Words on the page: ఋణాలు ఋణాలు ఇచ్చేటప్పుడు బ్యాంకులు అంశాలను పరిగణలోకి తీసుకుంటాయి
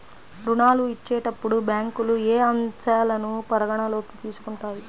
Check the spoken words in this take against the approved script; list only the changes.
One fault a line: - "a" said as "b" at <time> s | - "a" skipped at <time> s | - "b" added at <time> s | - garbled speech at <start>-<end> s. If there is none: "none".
- "ఋణాలు" skipped at 0.8 s
- "ఏ" added at 2.3 s